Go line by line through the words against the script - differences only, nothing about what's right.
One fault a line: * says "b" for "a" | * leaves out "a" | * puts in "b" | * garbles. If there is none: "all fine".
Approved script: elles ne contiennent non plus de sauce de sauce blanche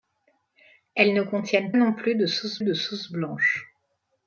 all fine